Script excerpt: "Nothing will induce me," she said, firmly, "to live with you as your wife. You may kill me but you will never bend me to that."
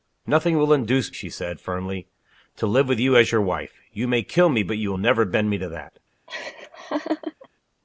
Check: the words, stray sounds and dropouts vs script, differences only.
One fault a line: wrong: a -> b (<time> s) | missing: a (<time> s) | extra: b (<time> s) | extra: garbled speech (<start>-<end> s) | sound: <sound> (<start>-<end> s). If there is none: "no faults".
missing: me (1.1 s)
sound: laugh (6.3-7.5 s)